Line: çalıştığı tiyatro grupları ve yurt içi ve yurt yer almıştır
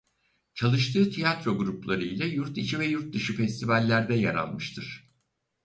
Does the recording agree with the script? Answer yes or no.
no